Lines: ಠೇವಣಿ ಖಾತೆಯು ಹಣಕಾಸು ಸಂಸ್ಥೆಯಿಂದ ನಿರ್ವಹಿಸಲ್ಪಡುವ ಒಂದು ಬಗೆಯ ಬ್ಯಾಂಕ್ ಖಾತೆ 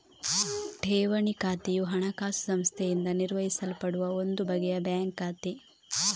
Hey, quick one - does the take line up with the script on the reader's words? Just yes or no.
yes